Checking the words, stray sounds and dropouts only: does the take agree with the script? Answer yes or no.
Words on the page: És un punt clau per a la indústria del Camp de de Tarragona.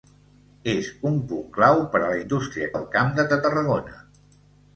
yes